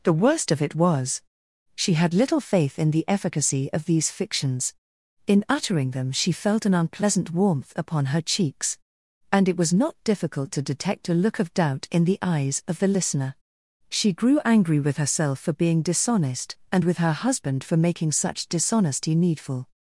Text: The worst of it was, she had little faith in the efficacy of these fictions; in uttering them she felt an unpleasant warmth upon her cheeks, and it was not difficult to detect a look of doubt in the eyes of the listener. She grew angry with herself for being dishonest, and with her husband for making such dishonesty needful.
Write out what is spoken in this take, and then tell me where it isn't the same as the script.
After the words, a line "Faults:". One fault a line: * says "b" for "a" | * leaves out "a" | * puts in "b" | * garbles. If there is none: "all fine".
The worst of it was, she had little faith in the efficacy of these fictions; in uttering them she felt an unpleasant warmth upon her cheeks, and it was not difficult to detect a look of doubt in the eyes of the listener. She grew angry with herself for being dishonest, and with her husband for making such dishonesty needful.
Faults:
all fine